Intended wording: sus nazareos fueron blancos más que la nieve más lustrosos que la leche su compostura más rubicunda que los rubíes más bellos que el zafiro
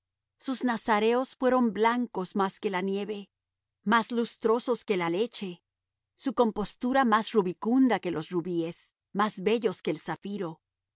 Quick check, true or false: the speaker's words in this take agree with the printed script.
true